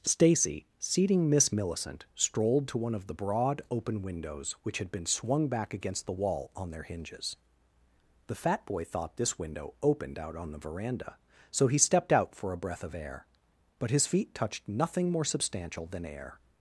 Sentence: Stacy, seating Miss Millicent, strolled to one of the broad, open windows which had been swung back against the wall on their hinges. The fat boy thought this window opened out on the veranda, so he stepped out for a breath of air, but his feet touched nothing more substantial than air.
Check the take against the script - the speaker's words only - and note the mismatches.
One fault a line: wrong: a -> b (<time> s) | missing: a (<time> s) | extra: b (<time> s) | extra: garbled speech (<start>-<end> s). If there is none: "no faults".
no faults